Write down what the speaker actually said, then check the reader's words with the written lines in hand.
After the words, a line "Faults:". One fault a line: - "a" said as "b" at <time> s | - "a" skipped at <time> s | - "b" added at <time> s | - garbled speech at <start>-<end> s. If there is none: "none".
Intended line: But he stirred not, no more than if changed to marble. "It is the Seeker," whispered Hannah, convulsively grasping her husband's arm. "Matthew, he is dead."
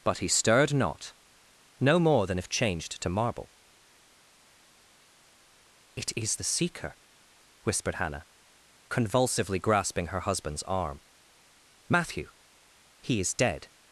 But he stirred not, no more than if changed to marble. "It is the Seeker," whispered Hannah, convulsively grasping her husband's arm. "Matthew, he is dead."
Faults:
none